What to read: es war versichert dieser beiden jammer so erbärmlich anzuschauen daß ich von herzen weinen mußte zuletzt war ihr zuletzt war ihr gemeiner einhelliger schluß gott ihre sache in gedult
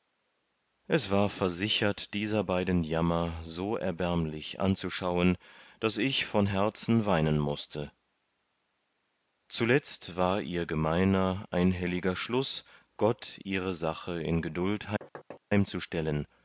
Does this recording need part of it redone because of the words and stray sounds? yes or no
yes